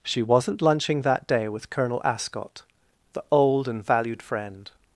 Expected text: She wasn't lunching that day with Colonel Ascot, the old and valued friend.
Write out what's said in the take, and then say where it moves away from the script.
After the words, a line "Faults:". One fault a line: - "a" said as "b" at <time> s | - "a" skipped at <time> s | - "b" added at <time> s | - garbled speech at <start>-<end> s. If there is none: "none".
She wasn't lunching that day with Colonel Ascot, the old and valued friend.
Faults:
none